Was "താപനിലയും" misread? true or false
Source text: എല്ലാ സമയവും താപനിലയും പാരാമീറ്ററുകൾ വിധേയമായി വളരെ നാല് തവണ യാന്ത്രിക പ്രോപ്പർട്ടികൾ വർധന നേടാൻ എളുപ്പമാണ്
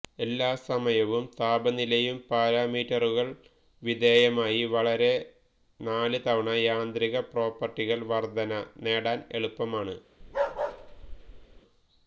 false